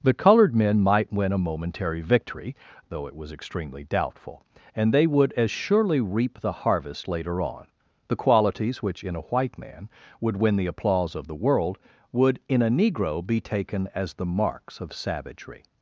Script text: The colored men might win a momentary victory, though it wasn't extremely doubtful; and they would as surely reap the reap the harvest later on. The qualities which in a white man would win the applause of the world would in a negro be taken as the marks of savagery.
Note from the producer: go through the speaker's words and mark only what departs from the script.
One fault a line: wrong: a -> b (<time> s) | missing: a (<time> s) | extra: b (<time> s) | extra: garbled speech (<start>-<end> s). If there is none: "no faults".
wrong: wasn't -> was (3.1 s)
missing: reap the (6.6 s)